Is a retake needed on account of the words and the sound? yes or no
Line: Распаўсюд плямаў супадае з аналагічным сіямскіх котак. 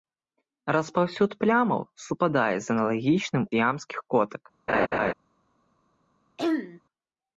yes